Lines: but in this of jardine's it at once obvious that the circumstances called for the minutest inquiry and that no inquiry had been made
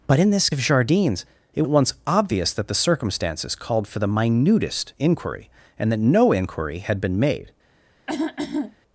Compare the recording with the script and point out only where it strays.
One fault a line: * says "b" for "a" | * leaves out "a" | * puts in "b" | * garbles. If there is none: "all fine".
all fine